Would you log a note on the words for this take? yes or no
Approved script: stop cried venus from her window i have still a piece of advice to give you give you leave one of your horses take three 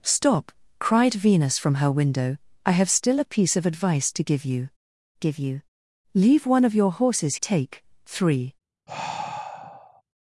no